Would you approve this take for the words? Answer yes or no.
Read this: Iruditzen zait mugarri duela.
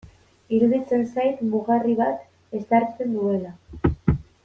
no